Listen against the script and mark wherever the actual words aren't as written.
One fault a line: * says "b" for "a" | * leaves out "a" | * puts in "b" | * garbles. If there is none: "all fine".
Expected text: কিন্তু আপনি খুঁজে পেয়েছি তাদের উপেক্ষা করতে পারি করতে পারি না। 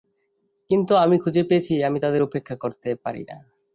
* says "আমি" for "আপনি"
* puts in "আমি"
* leaves out "করতে পারি"